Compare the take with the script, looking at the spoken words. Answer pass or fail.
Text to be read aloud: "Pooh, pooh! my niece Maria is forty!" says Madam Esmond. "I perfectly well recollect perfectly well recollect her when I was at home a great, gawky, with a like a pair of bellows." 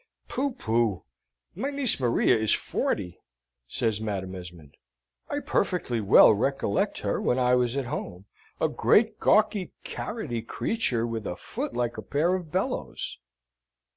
fail